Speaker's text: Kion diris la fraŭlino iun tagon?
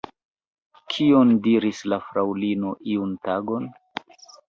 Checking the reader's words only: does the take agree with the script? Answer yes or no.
yes